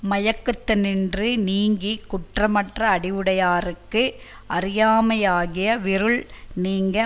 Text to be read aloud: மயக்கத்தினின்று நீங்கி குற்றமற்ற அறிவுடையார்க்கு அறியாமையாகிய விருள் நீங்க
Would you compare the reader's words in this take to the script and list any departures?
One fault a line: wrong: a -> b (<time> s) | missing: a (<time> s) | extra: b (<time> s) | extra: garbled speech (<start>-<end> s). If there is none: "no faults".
no faults